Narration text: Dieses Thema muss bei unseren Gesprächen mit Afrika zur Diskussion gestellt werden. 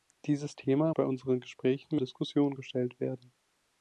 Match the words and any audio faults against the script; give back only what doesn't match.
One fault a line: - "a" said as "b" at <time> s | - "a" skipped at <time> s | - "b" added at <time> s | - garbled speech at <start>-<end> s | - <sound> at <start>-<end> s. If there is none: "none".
- "muss" skipped at 0.9 s
- "mit Afrika zur" skipped at 2.0 s